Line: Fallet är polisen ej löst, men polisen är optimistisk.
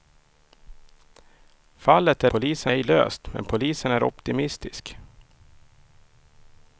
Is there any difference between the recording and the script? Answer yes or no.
no